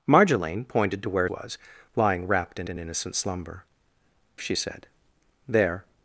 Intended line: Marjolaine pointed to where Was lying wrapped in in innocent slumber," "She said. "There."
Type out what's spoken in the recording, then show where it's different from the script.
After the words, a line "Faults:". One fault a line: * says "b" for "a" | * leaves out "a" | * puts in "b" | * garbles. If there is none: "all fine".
Marjolaine pointed to where Was lying wrapped in in innocent slumber," "She said. "There."
Faults:
all fine